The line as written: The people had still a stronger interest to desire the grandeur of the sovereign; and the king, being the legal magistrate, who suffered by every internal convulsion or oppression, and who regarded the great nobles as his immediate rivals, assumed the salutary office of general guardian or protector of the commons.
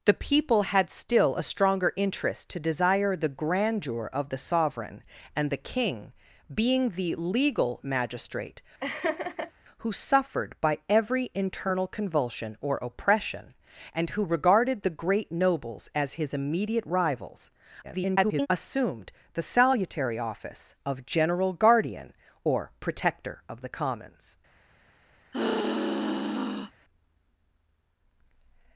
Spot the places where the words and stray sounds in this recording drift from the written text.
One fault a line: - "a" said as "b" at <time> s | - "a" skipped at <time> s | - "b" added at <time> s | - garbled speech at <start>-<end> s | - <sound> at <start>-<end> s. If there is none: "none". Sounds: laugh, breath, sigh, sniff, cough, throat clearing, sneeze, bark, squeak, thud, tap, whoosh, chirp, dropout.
- laugh at 8.8-9.5 s
- garbled speech at 17.8-18.5 s
- sigh at 25.3-26.7 s